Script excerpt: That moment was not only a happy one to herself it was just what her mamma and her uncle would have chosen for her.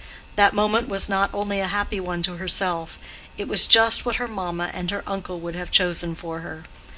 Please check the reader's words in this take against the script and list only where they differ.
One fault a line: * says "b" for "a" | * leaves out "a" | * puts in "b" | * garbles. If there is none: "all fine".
all fine